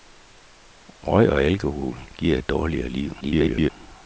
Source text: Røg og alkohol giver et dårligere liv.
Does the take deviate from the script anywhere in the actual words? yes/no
yes